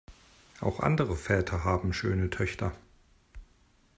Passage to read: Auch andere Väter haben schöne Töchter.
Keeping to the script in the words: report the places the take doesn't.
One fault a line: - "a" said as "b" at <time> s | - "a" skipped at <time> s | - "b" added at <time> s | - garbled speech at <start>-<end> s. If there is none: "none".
none